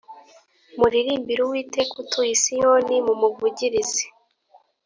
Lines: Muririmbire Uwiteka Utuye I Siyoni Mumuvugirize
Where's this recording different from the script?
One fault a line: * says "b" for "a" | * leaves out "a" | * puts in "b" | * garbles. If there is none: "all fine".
all fine